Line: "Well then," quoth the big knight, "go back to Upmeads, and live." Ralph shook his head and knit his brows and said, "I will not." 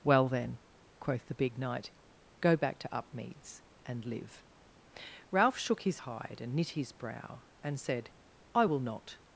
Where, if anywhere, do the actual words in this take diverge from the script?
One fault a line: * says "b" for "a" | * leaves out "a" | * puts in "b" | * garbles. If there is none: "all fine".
* says "hide" for "head"
* says "brow" for "brows"